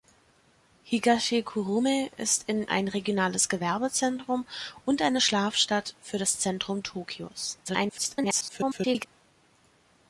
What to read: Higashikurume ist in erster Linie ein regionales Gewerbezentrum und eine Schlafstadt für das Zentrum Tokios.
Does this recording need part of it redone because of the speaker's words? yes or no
yes